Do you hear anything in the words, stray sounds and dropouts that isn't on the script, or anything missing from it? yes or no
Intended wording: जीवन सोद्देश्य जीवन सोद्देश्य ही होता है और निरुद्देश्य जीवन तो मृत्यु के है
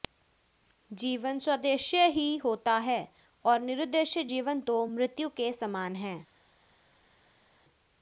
yes